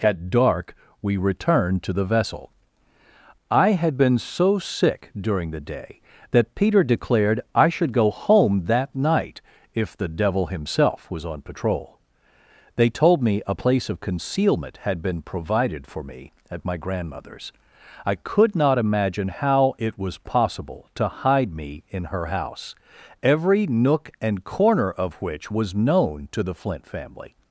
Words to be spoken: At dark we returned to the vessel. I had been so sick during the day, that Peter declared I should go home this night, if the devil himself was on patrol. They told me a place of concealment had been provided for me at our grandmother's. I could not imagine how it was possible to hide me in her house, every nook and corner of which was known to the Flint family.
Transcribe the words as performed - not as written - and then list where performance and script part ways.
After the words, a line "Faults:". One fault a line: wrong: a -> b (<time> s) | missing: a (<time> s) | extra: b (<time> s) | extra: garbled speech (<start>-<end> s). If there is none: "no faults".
At dark we returned to the vessel. I had been so sick during the day, that Peter declared I should go home that night, if the devil himself was on patrol. They told me a place of concealment had been provided for me at my grandmother's. I could not imagine how it was possible to hide me in her house, every nook and corner of which was known to the Flint family.
Faults:
wrong: this -> that (8.7 s)
wrong: our -> my (16.6 s)